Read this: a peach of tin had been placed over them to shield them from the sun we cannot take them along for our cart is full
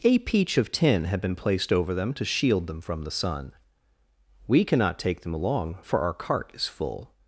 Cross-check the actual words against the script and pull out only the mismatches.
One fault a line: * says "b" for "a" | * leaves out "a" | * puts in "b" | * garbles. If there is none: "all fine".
all fine